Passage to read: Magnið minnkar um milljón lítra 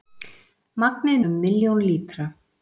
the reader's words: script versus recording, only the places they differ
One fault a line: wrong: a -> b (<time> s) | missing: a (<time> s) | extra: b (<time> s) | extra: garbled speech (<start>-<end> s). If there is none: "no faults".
missing: minnkar (1.2 s)